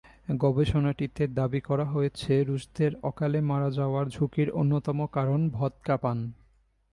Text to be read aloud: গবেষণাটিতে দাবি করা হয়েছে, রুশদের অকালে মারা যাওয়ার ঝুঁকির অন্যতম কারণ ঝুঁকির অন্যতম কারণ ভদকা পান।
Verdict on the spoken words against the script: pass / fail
fail